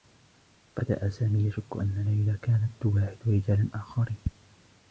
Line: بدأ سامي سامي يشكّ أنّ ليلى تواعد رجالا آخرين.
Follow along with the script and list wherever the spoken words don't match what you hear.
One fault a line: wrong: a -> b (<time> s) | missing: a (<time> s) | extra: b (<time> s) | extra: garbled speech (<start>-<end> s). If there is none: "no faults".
missing: سامي (1.4 s)
extra: كانت (2.4 s)